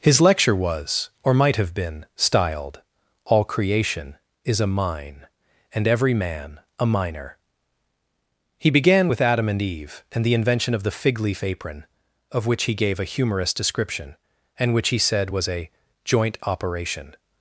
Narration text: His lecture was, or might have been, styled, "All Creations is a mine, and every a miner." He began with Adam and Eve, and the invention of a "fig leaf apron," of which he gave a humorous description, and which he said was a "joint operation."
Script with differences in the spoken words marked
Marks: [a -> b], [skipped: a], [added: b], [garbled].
His lecture was, or might have been, styled, "All [Creations -> Creation] is a mine, and every [added: man] a miner." He began with Adam and Eve, and the invention of [a -> the] "fig leaf apron," of which he gave a humorous description, and which he said was a "joint operation."